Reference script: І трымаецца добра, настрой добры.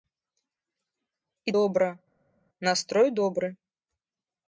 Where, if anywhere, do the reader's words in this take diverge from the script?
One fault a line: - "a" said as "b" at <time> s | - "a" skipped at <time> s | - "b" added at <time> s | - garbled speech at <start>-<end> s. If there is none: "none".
- "трымаецца" skipped at 1.6 s